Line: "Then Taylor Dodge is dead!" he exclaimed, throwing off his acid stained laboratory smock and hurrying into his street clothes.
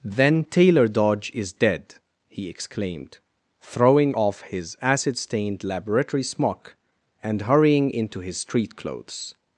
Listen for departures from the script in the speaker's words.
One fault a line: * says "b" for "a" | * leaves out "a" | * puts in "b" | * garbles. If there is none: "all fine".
all fine